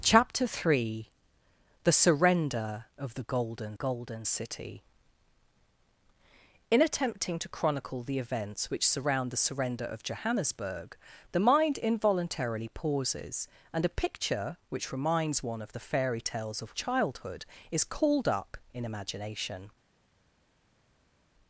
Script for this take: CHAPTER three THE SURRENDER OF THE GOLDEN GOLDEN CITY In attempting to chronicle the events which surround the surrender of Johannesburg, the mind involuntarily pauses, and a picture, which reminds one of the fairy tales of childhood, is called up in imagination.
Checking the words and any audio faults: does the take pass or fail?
pass